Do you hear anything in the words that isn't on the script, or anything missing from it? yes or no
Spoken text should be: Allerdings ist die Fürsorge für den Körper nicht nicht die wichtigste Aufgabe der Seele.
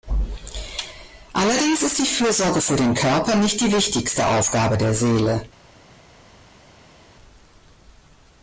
yes